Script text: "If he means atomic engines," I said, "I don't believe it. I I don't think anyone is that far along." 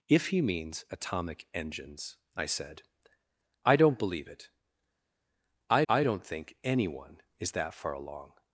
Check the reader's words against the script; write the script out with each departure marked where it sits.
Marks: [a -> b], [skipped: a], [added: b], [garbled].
"If he means atomic engines," I said, "I don't believe it. I I don't think anyone is that far along."